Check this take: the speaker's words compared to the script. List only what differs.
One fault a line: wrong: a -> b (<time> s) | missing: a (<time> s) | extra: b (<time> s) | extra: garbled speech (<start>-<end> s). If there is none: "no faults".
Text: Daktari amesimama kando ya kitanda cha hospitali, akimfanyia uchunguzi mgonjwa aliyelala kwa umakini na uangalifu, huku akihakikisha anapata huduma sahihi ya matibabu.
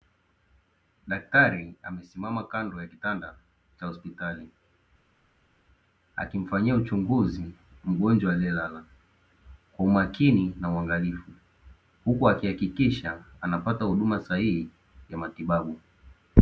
no faults